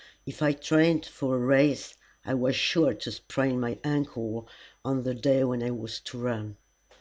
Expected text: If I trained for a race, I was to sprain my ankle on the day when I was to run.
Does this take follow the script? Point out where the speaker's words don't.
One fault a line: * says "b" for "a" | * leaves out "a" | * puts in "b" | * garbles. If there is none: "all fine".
* puts in "sure"